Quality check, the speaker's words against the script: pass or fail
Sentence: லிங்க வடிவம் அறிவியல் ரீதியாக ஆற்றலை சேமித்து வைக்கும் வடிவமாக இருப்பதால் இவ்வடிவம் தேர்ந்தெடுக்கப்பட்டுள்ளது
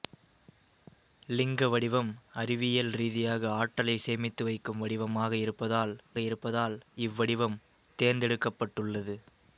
fail